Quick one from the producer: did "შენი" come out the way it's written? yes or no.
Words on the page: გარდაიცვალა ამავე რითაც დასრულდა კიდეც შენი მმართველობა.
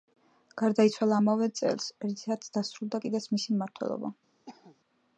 no